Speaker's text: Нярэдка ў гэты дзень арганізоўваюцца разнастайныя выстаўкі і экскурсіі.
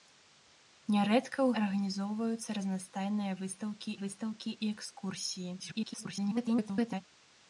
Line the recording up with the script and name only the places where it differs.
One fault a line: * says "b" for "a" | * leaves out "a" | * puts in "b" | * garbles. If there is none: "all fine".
* leaves out "гэты дзень"
* puts in "выстаўкі"
* garbles